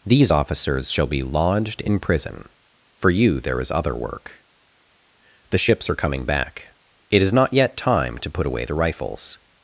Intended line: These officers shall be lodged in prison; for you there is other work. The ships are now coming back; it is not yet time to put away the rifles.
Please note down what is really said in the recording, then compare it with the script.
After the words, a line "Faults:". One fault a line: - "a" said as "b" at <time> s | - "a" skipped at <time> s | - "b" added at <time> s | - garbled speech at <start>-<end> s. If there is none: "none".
These officers shall be lodged in prison; for you there is other work. The ships are coming back; it is not yet time to put away the rifles.
Faults:
- "now" skipped at 6.0 s